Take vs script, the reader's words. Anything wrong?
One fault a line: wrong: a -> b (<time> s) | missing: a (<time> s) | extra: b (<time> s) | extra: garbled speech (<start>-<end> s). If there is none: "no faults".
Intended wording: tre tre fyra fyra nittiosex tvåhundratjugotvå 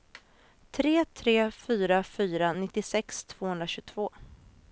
no faults